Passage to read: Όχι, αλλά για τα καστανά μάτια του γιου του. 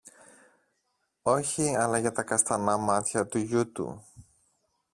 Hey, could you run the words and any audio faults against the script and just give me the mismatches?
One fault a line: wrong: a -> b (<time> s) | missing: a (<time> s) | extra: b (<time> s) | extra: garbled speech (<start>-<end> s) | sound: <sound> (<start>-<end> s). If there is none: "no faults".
no faults